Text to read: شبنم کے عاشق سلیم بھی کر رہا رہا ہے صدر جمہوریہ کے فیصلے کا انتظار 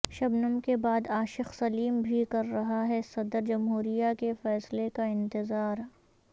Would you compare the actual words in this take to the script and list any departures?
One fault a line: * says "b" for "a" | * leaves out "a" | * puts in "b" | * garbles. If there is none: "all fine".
* puts in "بعد"
* leaves out "رہا"